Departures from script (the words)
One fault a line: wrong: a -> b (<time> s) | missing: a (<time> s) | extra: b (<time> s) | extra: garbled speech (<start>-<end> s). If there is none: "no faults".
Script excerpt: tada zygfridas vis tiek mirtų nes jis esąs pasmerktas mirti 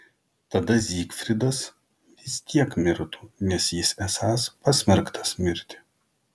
no faults